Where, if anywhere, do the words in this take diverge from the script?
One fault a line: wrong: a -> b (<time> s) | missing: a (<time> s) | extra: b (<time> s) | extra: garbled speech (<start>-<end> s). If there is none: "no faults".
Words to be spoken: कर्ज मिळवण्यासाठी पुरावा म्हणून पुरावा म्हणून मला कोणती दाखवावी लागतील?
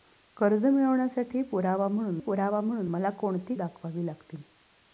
no faults